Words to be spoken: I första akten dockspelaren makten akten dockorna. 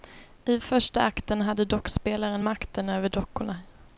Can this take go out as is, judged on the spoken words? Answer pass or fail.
fail